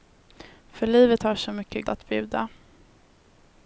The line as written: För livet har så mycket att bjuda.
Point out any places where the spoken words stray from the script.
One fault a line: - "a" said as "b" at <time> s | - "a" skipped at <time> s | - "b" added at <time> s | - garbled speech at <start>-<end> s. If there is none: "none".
none